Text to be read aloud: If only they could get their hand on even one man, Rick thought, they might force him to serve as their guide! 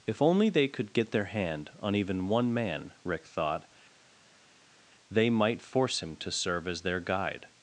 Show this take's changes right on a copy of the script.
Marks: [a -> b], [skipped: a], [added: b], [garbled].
If only they could get their hand on even one man, Rick thought, they might force him to serve as their guide!